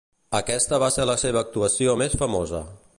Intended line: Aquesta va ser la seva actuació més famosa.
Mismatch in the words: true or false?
false